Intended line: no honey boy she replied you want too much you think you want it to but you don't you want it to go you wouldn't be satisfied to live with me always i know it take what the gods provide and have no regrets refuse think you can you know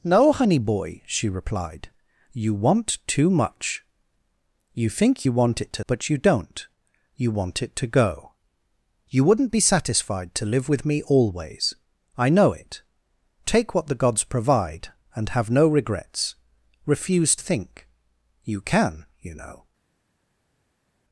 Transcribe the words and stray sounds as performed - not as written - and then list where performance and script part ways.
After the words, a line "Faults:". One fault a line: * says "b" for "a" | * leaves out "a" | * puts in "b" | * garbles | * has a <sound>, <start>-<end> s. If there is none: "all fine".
no honey boy she replied you want too much you think you want it to but you don't you want it to go you wouldn't be satisfied to live with me always i know it take what the gods provide and have no regrets refuse think you can you know
Faults:
all fine